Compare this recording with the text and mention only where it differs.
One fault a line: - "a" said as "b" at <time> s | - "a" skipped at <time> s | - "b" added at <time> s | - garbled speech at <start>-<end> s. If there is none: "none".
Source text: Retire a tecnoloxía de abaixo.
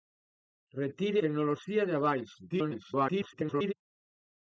- "a" skipped at 1.2 s
- garbled speech at 2.5-3.7 s